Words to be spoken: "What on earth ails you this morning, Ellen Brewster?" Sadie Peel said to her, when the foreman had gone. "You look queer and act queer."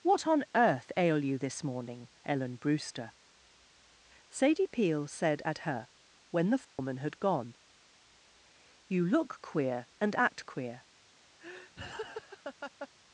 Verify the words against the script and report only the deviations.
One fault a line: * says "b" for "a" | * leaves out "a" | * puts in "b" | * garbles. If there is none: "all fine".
* says "ail" for "ails"
* says "at" for "to"